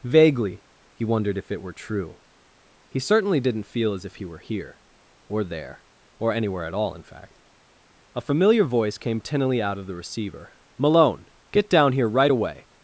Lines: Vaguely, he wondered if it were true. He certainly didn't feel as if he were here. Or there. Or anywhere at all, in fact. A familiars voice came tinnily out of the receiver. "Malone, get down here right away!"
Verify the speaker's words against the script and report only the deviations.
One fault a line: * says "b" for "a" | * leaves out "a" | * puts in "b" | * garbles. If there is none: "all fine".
* says "familiar" for "familiars"